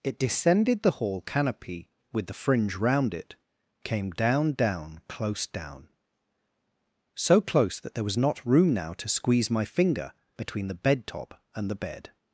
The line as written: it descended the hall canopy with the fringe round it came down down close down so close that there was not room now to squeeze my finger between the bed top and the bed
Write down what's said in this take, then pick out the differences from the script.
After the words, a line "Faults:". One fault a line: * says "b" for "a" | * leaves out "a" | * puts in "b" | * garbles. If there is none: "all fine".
it descended the hall canopy with the fringe round it came down down close down so close that there was not room now to squeeze my finger between the bed top and the bed
Faults:
all fine